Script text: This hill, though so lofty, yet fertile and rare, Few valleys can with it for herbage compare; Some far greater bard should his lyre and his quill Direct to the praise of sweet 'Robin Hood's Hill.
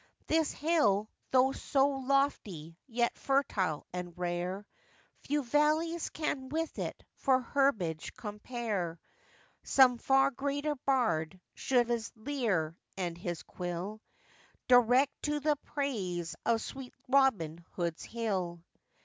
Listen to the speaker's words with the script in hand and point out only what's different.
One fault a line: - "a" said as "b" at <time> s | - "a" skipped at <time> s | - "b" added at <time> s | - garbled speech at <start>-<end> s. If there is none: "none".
none